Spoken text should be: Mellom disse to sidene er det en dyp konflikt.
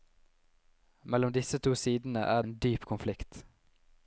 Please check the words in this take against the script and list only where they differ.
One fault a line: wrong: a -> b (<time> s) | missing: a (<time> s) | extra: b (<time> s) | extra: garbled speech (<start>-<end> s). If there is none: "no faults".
missing: det (2.4 s)